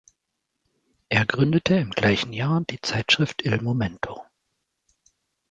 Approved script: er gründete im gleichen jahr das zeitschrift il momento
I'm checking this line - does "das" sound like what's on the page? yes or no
no